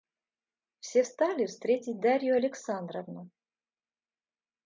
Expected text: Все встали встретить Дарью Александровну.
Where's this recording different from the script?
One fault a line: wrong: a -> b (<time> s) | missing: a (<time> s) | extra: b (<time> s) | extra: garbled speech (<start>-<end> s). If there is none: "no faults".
no faults